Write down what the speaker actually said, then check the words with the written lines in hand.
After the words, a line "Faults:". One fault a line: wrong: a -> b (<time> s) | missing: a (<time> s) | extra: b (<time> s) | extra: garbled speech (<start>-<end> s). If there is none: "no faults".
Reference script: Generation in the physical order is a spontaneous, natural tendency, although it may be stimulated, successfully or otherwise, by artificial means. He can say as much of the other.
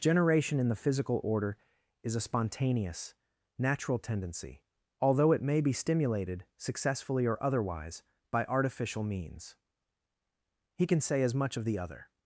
Generation in the physical order is a spontaneous, natural tendency, although it may be stimulated, successfully or otherwise, by artificial means. He can say as much of the other.
Faults:
no faults